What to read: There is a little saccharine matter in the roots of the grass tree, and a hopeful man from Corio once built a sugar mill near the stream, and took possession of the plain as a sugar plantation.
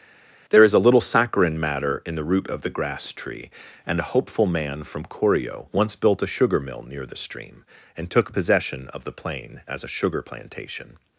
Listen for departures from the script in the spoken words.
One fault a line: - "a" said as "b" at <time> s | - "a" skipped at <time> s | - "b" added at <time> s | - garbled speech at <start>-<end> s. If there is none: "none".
- "roots" said as "root" at 2.2 s